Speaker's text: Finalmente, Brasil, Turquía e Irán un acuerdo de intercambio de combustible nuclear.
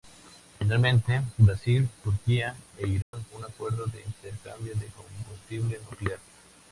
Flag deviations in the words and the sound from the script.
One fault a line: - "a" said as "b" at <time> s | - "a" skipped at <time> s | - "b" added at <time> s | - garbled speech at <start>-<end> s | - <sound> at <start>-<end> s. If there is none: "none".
- dropout at 3.0-3.1 s